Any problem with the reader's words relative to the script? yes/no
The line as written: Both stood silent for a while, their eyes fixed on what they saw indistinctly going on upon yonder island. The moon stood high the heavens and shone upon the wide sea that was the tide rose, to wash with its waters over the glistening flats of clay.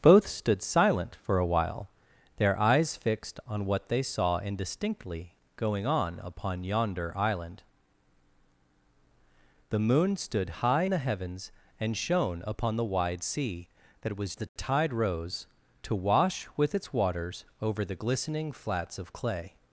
no